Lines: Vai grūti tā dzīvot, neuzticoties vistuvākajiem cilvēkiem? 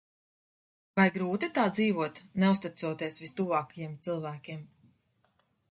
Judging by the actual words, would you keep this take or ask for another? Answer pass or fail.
pass